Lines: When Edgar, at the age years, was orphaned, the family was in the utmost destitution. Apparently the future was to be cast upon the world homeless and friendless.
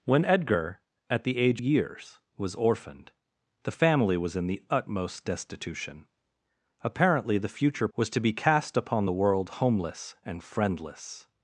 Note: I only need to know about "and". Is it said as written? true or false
true